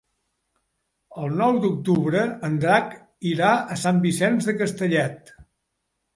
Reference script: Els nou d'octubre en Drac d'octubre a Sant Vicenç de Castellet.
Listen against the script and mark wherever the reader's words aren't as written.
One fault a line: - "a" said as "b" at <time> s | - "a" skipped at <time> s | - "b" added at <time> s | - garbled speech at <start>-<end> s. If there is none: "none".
- "Els" said as "El" at 1.2 s
- "d'octubre" said as "irà" at 3.3 s